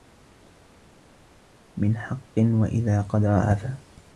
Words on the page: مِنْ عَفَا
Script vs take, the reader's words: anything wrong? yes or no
yes